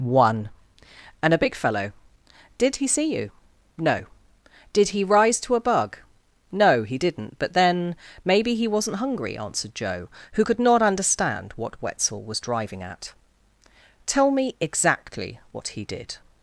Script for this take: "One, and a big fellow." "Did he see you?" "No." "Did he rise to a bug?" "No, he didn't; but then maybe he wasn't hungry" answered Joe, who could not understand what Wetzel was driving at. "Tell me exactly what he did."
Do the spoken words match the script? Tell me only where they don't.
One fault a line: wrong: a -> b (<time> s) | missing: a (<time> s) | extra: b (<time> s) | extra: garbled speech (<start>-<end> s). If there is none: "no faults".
no faults